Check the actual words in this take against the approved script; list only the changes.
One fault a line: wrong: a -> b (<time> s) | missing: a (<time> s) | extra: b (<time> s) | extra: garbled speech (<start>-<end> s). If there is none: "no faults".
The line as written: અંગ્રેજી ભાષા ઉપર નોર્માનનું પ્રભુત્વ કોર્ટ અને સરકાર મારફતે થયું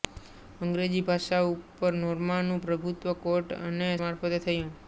missing: સરકાર (3.9 s)